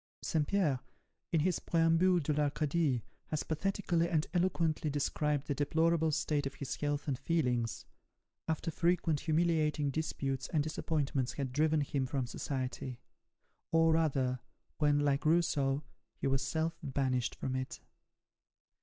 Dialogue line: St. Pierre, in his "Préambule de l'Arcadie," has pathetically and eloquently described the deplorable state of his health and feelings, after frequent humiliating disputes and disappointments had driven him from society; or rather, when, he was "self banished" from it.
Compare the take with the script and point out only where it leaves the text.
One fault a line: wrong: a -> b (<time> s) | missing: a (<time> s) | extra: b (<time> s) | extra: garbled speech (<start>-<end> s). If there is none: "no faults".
extra: like Rousseau (15.0 s)